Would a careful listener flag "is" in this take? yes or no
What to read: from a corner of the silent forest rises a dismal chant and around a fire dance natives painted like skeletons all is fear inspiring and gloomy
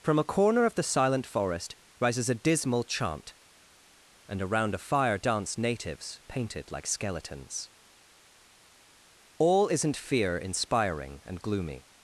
yes